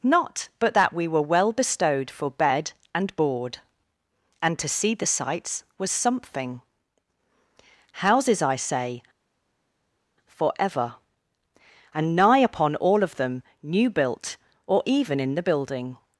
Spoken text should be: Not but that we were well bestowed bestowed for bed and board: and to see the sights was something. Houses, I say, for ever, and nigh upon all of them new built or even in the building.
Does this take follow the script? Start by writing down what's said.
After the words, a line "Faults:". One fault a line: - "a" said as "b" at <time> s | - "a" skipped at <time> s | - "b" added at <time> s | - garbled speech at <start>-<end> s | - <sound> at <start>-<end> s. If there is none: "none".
Not but that we were well bestowed for bed and board: and to see the sights was something. Houses, I say, for ever, and nigh upon all of them new built or even in the building.
Faults:
- "bestowed" skipped at 2.1 s